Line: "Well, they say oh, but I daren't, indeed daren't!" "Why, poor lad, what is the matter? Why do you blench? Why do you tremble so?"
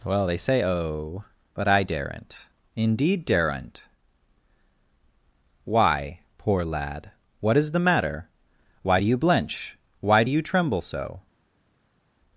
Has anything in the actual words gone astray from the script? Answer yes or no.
no